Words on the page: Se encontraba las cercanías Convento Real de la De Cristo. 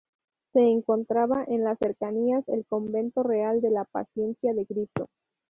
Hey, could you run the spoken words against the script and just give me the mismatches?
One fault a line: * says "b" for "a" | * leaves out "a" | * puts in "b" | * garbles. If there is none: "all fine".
* puts in "en"
* puts in "el"
* puts in "Paciencia"